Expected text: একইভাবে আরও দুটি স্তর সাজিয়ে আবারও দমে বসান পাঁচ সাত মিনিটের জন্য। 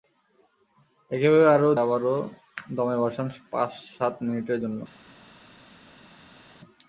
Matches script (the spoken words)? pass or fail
fail